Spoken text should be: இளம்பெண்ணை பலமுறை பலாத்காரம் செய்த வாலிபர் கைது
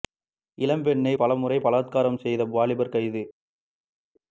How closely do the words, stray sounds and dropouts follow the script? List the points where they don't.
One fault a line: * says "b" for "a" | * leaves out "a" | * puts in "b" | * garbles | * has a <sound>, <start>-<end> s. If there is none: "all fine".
all fine